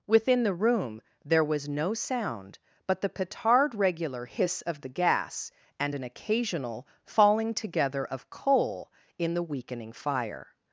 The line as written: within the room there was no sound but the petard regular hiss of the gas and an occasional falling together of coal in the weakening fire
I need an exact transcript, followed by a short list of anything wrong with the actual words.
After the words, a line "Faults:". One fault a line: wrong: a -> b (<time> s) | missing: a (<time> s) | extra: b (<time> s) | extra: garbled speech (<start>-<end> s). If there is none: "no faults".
within the room there was no sound but the petard regular hiss of the gas and an occasional falling together of coal in the weakening fire
Faults:
no faults